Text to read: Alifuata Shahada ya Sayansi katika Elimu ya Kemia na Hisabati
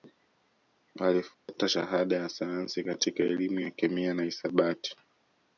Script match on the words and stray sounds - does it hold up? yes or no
no